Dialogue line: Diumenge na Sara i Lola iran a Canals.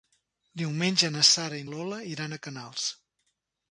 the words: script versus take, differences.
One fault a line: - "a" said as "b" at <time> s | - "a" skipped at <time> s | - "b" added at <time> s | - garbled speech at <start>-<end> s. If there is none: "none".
none